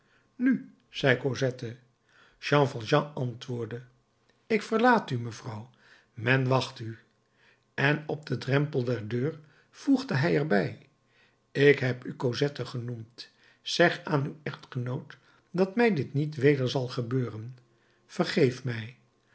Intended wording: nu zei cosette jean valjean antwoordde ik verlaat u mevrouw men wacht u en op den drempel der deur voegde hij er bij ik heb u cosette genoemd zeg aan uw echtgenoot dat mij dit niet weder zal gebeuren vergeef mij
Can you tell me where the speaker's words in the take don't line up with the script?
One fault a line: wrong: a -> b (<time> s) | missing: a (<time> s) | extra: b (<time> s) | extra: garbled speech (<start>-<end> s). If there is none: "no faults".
no faults